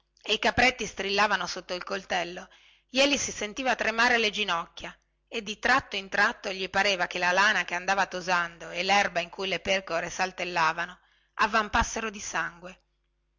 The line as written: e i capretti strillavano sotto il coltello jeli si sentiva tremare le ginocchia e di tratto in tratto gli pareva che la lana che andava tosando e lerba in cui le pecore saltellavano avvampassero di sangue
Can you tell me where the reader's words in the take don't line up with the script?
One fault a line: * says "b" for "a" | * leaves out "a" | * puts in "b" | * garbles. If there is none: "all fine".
all fine